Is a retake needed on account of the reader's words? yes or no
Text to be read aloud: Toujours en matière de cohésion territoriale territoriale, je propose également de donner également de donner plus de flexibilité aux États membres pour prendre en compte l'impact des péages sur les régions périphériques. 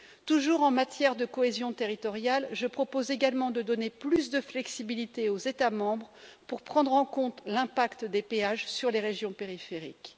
yes